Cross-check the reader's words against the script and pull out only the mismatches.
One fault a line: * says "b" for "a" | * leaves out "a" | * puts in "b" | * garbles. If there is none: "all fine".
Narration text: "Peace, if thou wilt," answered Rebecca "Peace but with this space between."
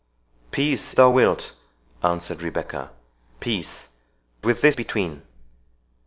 * leaves out "if"
* leaves out "but"
* leaves out "space"